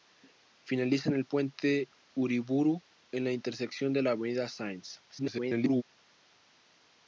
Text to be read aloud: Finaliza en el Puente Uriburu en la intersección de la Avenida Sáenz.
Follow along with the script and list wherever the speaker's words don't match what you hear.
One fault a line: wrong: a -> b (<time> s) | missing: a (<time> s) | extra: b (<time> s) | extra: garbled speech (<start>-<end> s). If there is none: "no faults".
extra: garbled speech (5.1-5.8 s)